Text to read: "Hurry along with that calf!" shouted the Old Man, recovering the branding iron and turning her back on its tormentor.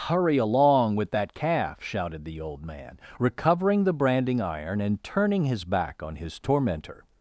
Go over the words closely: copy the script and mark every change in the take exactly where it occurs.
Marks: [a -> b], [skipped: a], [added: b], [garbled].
"Hurry along with that calf!" shouted the Old Man, recovering the branding iron and turning [her -> his] back on [its -> his] tormentor.